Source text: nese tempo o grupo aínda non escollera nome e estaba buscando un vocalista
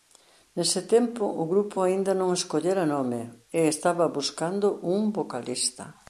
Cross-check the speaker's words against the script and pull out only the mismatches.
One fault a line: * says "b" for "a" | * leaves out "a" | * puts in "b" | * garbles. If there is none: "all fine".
all fine